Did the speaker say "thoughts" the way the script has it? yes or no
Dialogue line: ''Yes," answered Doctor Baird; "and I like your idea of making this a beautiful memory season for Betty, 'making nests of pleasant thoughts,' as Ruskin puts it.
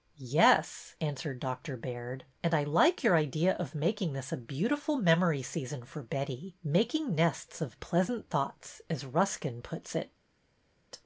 yes